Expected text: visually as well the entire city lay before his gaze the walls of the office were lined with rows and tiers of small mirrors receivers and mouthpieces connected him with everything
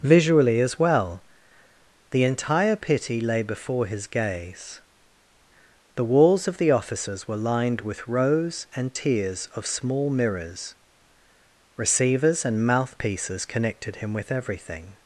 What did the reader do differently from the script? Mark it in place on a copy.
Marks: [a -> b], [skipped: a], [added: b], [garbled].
visually as well the entire [city -> pity] lay before his gaze the walls of the [office -> offices] were lined with rows and tiers of small mirrors receivers and mouthpieces connected him with everything